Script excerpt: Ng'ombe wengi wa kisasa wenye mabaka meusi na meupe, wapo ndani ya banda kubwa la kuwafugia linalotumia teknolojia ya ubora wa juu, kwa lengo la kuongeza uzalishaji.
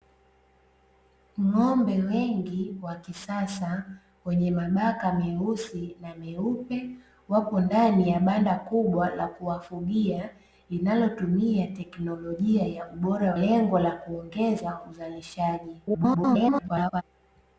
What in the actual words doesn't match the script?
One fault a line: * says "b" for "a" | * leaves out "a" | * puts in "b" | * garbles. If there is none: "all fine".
* leaves out "wa juu kwa"
* garbles